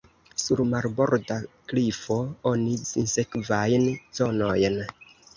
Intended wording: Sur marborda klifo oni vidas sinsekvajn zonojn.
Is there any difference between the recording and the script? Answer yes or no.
yes